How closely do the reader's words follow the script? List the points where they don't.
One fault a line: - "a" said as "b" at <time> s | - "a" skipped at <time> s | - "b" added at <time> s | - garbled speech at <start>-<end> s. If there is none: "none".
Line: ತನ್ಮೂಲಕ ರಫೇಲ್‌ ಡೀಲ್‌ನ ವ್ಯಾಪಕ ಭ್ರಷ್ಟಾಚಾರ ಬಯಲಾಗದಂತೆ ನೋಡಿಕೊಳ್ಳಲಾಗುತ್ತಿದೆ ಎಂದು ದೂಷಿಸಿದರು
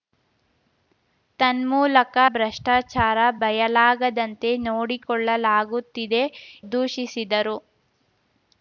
- "ರಫೇಲ್ ಡೀಲ್‌ನ ವ್ಯಾಪಕ" skipped at 2.1 s
- "ಎಂದು" skipped at 6.2 s